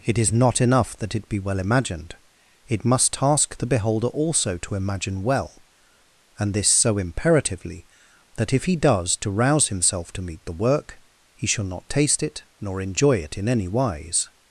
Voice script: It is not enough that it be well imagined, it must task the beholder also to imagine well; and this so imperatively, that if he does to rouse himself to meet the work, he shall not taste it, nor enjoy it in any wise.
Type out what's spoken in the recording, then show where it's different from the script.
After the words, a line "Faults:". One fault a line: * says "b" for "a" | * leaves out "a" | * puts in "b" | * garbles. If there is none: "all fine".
It is not enough that it be well imagined, it must task the beholder also to imagine well; and this so imperatively, that if he does to rouse himself to meet the work, he shall not taste it, nor enjoy it in any wise.
Faults:
all fine